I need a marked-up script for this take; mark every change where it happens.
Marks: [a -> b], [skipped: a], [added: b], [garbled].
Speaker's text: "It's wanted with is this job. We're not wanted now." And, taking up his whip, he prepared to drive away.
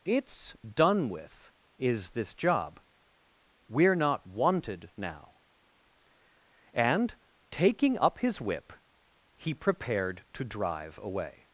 "It's [wanted -> done] with is this job. We're not wanted now." And, taking up his whip, he prepared to drive away.